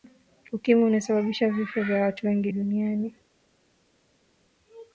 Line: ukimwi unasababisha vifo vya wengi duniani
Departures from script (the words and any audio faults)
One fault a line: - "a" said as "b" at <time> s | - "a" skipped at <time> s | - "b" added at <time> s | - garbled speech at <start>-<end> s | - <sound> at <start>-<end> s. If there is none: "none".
- "watu" added at 2.0 s